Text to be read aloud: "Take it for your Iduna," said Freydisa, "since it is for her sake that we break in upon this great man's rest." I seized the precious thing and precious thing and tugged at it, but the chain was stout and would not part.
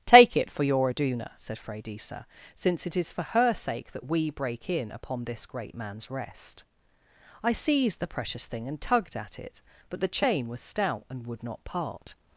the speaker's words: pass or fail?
fail